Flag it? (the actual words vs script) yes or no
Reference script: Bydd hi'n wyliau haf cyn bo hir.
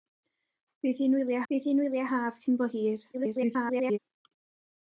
yes